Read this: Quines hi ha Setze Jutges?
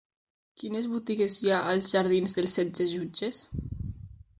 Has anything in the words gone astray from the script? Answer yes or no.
yes